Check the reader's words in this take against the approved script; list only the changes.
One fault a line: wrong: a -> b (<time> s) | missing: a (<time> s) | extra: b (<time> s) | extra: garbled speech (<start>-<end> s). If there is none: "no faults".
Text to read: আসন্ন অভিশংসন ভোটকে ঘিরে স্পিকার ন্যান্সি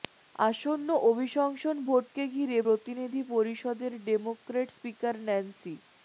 extra: প্রতিনিধি পরিষদের ডেমোক্র্যাট (2.6 s)